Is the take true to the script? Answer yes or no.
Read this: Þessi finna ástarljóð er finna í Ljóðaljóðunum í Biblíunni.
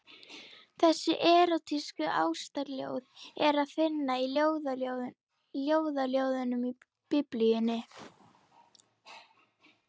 no